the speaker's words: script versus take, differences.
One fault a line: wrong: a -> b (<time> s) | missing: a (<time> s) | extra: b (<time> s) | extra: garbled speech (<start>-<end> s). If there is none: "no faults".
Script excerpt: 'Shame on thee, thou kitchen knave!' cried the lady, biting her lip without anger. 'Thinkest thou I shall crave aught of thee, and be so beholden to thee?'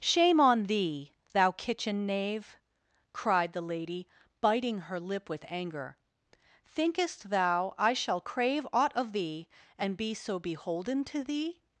wrong: without -> with (5.3 s)